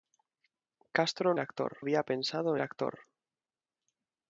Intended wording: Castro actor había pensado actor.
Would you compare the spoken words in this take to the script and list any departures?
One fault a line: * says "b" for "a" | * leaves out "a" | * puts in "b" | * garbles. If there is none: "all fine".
all fine